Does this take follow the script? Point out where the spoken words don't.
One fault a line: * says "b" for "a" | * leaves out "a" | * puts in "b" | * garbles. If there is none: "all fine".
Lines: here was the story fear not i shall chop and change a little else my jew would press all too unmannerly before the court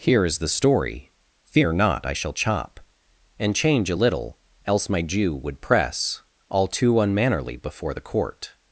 * says "is" for "was"